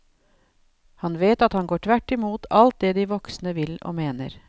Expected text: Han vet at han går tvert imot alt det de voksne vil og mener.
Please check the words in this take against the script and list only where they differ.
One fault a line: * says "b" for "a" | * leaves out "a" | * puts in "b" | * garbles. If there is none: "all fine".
all fine